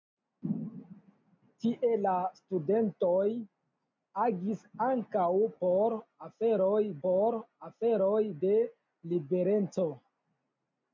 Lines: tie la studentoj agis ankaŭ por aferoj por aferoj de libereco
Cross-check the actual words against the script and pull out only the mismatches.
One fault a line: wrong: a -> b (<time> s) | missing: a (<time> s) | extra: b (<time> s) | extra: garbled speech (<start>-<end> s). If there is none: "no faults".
no faults